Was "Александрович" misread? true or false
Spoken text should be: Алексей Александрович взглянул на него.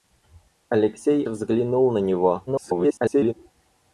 true